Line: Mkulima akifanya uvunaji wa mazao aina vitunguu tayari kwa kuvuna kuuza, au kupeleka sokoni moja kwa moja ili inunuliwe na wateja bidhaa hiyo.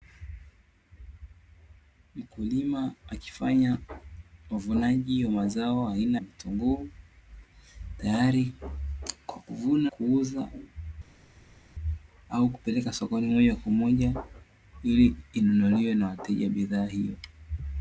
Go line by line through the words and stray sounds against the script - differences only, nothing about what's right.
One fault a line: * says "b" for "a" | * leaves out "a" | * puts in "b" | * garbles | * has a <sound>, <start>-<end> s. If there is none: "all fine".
all fine